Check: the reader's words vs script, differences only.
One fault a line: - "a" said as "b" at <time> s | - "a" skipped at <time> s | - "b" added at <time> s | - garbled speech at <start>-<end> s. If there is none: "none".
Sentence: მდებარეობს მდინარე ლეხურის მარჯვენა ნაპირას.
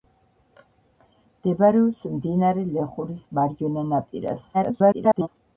- garbled speech at 4.5-5.3 s